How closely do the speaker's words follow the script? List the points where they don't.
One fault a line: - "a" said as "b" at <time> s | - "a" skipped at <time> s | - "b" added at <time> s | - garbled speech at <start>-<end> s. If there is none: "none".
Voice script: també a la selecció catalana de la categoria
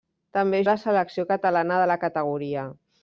none